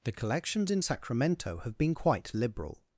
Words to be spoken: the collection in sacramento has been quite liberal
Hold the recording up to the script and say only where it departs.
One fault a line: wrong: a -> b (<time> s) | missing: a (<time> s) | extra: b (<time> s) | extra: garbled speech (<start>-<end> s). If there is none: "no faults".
wrong: collection -> collections (0.1 s)
wrong: has -> have (1.6 s)